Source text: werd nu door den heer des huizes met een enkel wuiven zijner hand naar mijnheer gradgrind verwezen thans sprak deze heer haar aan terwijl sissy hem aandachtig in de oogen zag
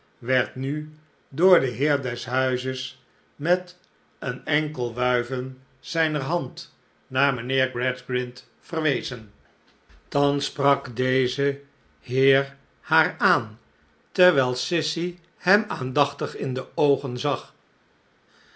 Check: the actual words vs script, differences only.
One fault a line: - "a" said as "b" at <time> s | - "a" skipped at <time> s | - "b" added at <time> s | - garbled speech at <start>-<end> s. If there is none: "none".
none